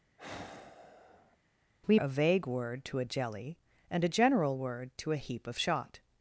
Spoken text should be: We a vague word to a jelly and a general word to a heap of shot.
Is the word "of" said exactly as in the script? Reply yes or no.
yes